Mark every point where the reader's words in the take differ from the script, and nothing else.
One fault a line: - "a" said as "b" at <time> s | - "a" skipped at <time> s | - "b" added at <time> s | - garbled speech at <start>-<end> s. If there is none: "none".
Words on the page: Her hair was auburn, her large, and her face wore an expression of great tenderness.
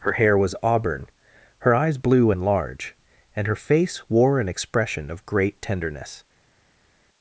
- "eyes blue and" added at 1.8 s